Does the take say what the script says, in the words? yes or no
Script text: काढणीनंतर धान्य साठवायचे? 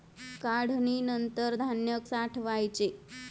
yes